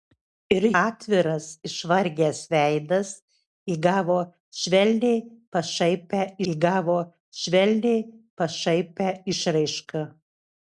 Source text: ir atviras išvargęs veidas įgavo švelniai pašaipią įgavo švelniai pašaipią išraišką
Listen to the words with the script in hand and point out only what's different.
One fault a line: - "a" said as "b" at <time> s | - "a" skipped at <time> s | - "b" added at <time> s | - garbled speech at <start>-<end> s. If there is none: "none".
none